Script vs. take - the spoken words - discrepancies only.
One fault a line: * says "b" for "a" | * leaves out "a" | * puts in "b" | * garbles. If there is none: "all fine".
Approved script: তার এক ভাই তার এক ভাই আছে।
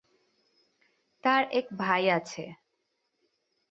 * leaves out "তার এক ভাই"